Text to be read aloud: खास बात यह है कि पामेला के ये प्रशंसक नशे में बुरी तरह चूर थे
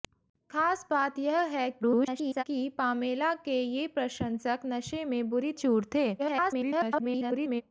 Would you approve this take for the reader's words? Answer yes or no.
no